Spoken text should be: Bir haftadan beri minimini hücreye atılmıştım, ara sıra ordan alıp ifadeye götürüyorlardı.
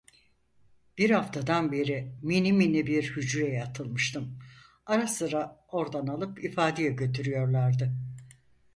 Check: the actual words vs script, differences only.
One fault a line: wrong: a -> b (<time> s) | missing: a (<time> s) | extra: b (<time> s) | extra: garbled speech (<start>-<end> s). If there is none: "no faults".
extra: bir (2.9 s)